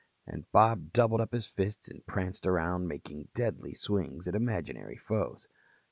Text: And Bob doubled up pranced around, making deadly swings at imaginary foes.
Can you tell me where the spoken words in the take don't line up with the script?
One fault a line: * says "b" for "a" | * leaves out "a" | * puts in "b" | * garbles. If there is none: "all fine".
* puts in "his fists and"